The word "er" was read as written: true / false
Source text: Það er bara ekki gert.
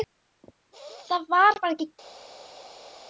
false